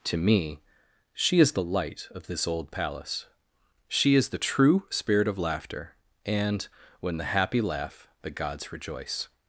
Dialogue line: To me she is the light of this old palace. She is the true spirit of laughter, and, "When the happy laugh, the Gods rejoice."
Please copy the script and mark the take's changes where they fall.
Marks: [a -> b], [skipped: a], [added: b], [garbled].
To me she is the light of this old palace. She is the true spirit of laughter, and, "When the happy laugh, the Gods rejoice."